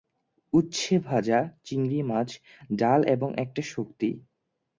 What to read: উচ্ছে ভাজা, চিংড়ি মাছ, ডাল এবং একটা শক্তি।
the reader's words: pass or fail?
pass